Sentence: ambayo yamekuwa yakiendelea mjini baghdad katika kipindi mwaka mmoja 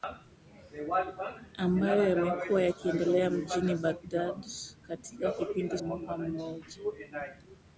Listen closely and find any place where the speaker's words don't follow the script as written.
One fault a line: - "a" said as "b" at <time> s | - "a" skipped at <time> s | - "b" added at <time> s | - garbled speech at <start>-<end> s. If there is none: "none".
none